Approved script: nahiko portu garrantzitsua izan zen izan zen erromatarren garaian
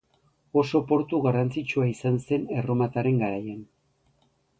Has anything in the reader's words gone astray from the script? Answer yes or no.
yes